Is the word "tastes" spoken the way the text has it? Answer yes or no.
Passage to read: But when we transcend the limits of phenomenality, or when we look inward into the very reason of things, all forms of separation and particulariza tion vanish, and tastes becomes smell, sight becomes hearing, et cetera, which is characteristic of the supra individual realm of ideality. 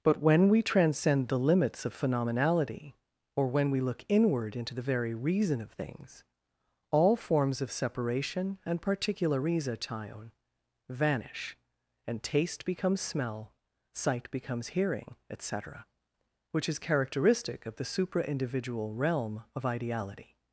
no